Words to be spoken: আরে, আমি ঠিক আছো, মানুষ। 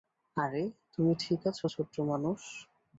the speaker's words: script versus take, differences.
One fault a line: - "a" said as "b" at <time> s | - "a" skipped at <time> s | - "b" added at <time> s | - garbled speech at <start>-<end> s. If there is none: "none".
- "আমি" said as "তুমি" at 0.9 s
- "ছোট্ট" added at 1.7 s